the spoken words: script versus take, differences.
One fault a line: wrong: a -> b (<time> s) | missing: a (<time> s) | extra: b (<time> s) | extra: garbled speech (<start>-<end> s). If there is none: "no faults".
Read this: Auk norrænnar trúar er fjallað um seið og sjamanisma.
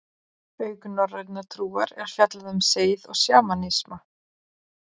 no faults